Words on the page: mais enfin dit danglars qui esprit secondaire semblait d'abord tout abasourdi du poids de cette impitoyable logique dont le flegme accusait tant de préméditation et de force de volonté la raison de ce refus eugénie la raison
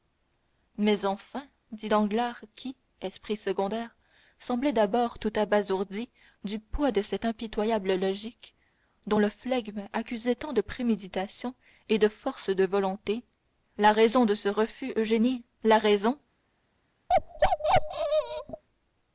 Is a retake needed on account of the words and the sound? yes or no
yes